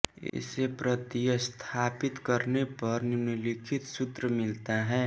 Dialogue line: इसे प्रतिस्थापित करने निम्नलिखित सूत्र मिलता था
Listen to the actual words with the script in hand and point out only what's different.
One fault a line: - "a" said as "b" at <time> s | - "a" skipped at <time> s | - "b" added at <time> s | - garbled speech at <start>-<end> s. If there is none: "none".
- "पर" added at 2.8 s
- "था" said as "है" at 4.8 s